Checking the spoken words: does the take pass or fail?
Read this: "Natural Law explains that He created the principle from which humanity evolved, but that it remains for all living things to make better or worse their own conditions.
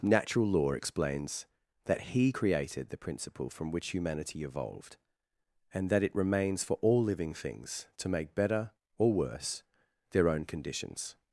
fail